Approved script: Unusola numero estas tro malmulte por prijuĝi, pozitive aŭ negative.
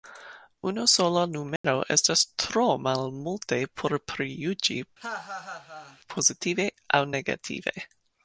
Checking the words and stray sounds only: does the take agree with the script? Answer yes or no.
no